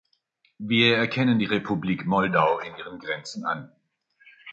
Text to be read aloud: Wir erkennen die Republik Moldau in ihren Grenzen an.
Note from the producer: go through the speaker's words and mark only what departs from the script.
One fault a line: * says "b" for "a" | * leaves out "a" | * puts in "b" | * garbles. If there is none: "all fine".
all fine